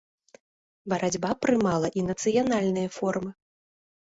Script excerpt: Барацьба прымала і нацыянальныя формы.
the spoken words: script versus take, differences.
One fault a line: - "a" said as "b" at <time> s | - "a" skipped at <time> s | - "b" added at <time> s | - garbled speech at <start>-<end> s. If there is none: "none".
none